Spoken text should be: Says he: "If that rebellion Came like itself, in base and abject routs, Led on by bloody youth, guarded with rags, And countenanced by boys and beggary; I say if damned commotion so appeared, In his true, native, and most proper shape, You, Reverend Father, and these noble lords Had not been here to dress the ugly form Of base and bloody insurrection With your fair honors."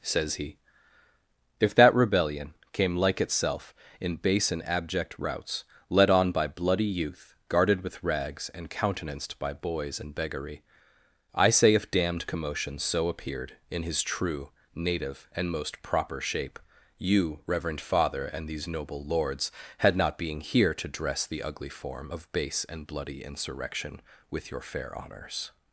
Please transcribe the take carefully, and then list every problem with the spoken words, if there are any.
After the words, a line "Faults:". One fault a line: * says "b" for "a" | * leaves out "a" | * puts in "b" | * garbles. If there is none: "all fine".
Says he: "If that rebellion Came like itself, in base and abject routs, Led on by bloody youth, guarded with rags, And countenanced by boys and beggary; I say if damned commotion so appeared, In his true, native, and most proper shape, You, Reverend Father, and these noble lords Had not being here to dress the ugly form Of base and bloody insurrection With your fair honors."
Faults:
* says "being" for "been"